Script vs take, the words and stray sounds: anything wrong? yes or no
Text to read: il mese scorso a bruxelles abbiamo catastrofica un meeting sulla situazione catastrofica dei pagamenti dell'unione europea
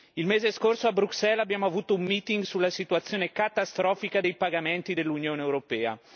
yes